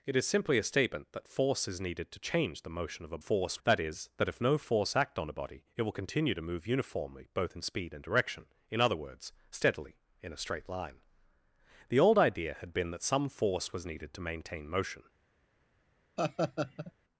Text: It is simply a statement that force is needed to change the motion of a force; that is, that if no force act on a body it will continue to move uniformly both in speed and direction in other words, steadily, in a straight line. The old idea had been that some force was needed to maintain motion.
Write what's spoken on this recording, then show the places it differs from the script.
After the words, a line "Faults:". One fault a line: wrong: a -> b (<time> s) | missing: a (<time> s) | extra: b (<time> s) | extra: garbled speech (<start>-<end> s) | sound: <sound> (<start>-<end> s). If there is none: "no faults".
It is simply a statement that force is needed to change the motion of a force; that is, that if no force act on a body it will continue to move uniformly both in speed and direction in other words, steadily, in a straight line. The old idea had been that some force was needed to maintain motion.
Faults:
sound: laugh (16.2-16.9 s)